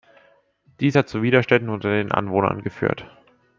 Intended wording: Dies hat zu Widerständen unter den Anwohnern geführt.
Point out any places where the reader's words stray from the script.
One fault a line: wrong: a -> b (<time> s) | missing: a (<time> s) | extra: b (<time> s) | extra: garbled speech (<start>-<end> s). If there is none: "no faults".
no faults